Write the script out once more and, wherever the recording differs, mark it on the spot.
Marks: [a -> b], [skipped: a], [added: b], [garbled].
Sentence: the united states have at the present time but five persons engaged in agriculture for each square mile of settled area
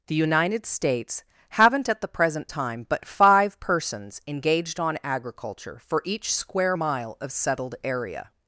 the united states [have -> haven't] at the present time but five persons engaged [in -> on] agriculture for each square mile of settled area